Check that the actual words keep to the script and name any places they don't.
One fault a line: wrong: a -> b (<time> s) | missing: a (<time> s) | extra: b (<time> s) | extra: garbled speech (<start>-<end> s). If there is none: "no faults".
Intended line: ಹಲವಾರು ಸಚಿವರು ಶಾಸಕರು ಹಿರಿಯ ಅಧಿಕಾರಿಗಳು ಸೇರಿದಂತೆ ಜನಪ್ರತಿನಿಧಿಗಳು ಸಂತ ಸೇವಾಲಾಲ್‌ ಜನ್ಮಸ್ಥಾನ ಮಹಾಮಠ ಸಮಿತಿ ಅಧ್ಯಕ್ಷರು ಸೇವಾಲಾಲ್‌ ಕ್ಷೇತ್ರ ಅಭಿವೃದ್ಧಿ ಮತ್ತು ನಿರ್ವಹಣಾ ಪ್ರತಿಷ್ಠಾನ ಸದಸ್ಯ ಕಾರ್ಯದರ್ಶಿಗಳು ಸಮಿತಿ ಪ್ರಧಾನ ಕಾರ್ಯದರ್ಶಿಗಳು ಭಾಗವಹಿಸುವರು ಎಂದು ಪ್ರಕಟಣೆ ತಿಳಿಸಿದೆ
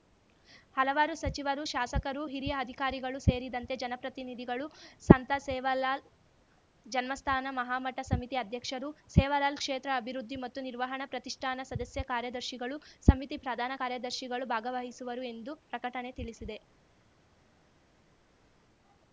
no faults